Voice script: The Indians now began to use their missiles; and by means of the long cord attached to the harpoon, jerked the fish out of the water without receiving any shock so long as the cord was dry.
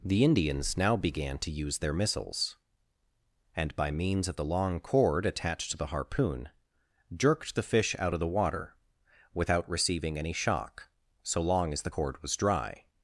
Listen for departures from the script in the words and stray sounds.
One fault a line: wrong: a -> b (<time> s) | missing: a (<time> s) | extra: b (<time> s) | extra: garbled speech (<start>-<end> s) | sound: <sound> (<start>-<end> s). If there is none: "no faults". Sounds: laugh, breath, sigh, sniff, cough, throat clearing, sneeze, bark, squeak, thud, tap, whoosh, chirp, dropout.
no faults